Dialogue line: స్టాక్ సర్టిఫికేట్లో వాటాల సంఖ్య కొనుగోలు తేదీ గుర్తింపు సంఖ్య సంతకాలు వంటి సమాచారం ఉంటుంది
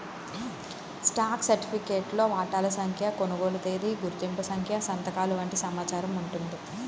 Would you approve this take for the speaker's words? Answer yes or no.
yes